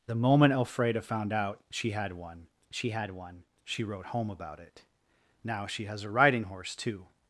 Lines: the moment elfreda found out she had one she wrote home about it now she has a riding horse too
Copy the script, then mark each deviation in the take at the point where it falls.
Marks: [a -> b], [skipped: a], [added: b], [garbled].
the moment elfreda found out she had one she [added: had one she] wrote home about it now she has a riding horse too